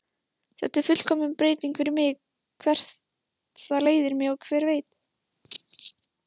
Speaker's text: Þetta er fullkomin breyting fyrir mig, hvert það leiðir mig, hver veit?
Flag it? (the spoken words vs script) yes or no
no